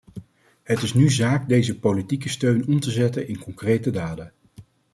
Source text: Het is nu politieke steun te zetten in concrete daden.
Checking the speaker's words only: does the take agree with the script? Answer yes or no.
no